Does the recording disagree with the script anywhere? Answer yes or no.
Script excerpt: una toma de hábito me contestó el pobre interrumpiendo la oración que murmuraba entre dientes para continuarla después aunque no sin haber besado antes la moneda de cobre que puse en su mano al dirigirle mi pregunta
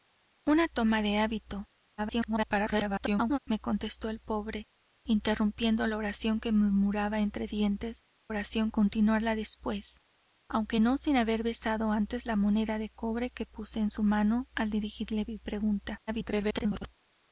yes